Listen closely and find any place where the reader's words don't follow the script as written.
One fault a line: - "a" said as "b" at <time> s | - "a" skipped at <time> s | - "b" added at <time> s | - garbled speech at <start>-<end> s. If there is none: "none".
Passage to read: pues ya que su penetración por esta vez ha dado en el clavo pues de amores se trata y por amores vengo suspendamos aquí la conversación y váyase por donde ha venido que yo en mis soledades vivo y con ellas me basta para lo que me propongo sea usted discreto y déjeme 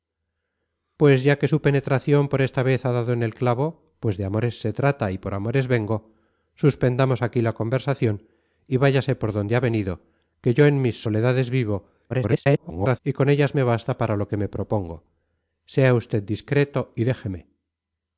- garbled speech at 12.1-13.0 s